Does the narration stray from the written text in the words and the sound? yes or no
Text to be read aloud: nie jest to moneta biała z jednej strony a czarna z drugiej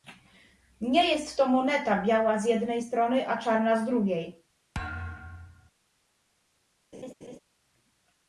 yes